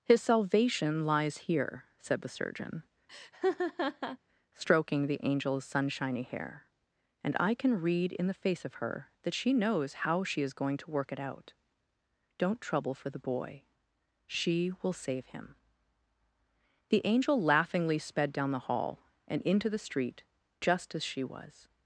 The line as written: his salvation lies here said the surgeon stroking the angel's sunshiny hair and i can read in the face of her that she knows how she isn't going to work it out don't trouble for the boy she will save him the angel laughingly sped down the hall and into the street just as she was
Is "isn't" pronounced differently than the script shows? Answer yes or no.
yes